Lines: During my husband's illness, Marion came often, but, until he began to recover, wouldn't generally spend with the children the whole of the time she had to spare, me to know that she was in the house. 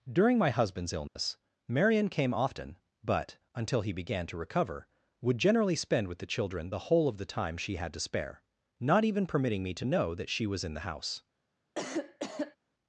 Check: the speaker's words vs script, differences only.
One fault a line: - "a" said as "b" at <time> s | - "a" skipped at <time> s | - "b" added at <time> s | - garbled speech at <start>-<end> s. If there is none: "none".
- "wouldn't" said as "would" at 5.2 s
- "not even permitting" added at 8.8 s